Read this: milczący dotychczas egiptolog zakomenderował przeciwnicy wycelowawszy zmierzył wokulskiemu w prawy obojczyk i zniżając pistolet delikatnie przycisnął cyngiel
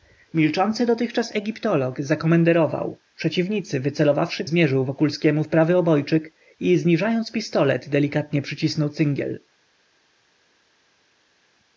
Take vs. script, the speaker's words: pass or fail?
pass